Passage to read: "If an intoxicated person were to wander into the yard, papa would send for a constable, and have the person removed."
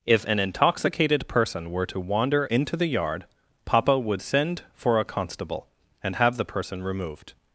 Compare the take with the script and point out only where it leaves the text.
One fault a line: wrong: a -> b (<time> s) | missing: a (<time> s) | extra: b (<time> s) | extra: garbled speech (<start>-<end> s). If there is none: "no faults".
no faults